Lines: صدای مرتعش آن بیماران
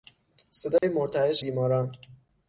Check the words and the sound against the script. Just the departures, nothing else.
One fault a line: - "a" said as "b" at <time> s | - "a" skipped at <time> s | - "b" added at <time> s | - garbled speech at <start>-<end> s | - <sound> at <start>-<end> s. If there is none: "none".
- dropout at 0.8-0.8 s
- "آن" skipped at 1.4 s